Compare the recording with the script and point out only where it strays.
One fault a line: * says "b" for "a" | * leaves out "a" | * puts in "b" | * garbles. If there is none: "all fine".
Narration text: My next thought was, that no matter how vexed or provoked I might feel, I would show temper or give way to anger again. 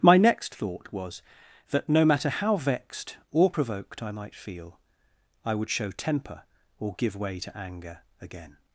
all fine